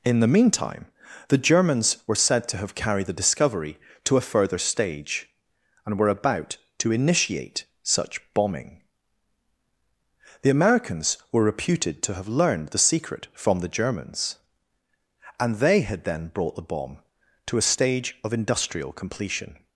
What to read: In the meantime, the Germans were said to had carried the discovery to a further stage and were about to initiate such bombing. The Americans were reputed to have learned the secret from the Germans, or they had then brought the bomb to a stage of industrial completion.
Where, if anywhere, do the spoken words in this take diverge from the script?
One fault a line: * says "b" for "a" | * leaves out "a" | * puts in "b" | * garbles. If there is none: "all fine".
* says "have" for "had"
* says "and" for "or"